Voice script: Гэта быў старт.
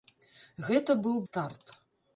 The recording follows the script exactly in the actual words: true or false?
true